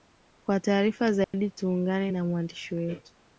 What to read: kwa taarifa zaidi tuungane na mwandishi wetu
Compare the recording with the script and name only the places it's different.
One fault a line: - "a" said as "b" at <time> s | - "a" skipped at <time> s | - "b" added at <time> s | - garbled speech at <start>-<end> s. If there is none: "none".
none